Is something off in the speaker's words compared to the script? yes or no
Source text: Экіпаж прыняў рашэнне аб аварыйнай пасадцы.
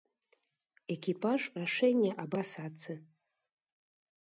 yes